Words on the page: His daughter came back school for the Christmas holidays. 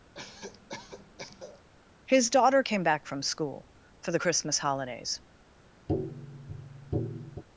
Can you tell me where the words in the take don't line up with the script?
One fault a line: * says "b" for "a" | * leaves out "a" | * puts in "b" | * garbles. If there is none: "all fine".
* puts in "from"